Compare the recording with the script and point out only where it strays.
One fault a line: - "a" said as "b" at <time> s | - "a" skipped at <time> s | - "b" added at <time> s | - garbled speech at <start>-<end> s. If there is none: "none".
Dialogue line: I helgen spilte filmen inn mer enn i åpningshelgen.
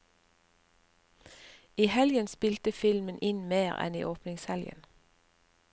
none